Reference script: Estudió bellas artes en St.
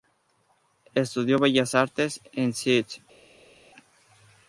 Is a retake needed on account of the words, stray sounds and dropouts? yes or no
no